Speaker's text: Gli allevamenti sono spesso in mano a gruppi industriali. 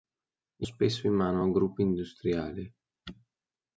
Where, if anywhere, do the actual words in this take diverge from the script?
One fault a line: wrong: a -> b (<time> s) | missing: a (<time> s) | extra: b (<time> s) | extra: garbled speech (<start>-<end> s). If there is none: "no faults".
missing: allevamenti sono (0.7 s)